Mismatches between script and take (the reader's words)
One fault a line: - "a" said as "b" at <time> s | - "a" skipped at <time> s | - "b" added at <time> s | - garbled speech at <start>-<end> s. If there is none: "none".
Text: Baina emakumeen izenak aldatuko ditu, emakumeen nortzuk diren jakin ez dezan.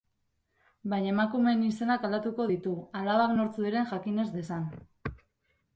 - "emakumeen" said as "alabak" at 3.0 s